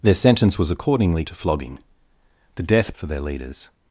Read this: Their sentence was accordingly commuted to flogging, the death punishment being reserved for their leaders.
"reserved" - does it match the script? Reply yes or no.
no